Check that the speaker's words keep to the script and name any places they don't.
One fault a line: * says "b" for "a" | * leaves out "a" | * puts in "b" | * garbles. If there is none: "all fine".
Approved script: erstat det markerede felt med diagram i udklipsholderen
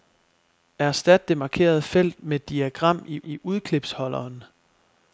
* puts in "i"